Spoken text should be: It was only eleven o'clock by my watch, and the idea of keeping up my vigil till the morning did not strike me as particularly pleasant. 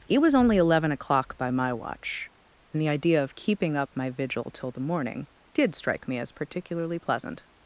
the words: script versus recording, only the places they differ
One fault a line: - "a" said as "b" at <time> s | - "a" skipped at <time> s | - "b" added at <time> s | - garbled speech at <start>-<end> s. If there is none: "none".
- "not" skipped at 5.8 s